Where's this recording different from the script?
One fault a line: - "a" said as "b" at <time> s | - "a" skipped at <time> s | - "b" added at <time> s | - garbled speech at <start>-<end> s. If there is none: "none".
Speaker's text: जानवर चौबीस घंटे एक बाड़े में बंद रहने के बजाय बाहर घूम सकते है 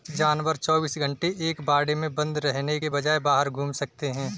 none